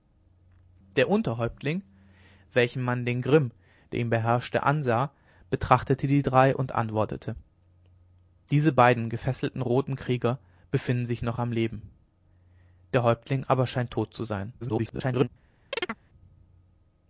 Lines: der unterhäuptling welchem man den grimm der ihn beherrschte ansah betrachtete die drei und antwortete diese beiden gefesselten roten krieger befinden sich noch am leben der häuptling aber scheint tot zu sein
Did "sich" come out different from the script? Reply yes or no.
no